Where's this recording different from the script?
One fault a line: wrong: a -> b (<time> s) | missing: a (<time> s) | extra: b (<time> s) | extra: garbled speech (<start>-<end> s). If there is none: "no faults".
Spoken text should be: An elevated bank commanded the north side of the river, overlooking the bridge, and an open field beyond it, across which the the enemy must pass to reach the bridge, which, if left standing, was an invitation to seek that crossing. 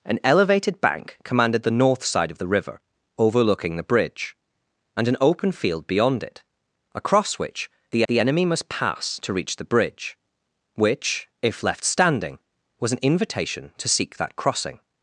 no faults